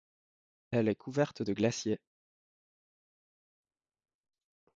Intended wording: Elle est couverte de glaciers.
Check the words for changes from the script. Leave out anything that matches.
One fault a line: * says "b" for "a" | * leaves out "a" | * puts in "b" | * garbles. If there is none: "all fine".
all fine